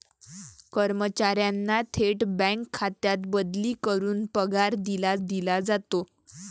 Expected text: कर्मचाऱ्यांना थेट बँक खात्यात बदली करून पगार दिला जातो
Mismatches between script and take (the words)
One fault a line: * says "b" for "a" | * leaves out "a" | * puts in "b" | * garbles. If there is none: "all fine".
* puts in "दिला"